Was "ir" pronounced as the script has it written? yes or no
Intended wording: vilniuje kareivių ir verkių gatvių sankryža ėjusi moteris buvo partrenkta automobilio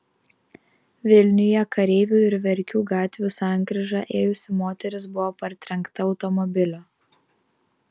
yes